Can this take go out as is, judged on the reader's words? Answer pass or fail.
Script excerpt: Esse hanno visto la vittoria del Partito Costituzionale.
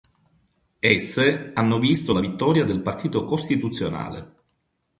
pass